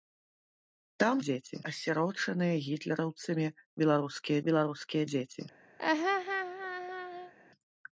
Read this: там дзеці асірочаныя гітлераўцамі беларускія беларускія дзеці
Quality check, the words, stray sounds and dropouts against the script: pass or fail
fail